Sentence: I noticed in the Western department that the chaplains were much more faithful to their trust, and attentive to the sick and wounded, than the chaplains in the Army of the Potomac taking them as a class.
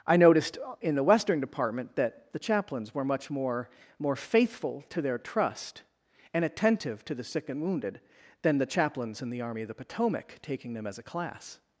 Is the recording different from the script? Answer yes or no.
yes